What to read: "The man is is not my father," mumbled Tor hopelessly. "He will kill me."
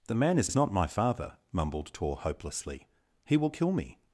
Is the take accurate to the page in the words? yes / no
yes